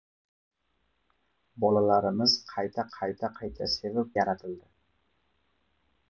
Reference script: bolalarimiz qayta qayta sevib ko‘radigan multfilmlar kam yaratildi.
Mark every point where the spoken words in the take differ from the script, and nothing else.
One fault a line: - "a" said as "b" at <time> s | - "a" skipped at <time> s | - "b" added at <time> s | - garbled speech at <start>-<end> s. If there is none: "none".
- "qayta" added at 3.4 s
- "ko‘radigan multfilmlar kam" skipped at 4.1 s